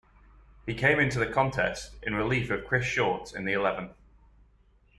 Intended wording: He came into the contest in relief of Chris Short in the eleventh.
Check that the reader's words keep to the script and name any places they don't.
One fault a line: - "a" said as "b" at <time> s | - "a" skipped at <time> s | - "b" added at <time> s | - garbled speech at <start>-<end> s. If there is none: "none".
none